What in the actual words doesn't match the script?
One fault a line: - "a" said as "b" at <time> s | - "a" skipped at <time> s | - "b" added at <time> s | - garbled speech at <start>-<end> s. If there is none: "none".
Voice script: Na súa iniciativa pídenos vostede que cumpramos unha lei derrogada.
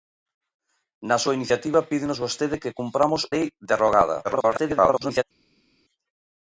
- "unha" skipped at 3.2 s
- garbled speech at 4.2-5.2 s